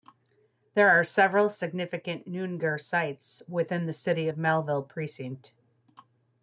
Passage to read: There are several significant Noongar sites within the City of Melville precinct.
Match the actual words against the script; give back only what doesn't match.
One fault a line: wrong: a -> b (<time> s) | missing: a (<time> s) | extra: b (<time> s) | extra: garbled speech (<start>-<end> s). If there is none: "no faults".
no faults